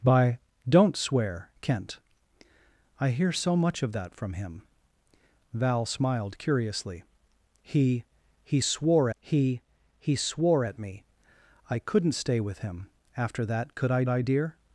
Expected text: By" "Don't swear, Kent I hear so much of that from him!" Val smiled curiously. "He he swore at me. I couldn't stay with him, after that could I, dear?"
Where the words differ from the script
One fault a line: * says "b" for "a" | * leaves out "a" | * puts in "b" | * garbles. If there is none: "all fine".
* puts in "he he swore"
* puts in "I"